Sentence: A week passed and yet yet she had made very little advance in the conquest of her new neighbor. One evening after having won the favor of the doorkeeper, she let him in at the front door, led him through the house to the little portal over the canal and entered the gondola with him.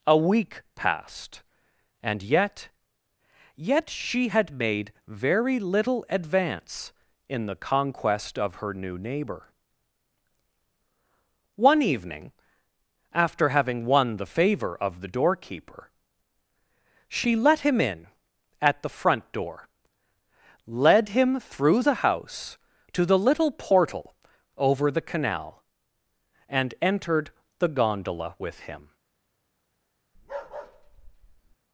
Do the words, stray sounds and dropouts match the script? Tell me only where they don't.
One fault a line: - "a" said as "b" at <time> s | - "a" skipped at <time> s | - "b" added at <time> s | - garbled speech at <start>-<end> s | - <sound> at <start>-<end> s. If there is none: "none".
- bark at 30.1-31.6 s